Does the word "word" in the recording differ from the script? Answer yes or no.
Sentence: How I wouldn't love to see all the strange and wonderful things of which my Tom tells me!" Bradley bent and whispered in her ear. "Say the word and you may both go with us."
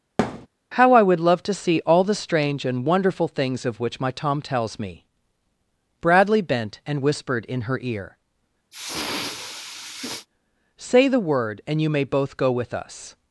no